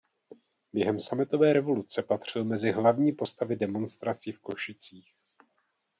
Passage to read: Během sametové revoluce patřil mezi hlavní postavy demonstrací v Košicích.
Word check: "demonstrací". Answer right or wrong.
right